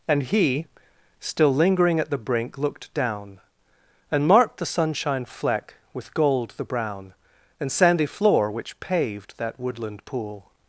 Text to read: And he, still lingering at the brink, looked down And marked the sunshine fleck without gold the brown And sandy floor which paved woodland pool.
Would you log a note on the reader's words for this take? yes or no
yes